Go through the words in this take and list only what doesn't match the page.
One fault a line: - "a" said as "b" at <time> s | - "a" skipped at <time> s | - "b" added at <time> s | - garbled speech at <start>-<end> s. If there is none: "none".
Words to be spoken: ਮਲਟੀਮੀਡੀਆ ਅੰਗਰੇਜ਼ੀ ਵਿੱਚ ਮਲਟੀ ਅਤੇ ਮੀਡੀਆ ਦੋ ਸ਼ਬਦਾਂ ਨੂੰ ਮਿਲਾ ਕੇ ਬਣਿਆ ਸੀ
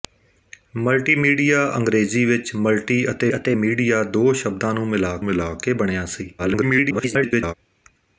- "ਅਤੇ" added at 3.4 s
- "ਮਿਲਾ" added at 5.2 s
- garbled speech at 6.4-7.5 s